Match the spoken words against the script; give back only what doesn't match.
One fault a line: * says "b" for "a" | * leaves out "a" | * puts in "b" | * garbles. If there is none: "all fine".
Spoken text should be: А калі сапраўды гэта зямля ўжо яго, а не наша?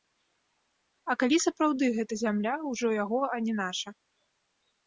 all fine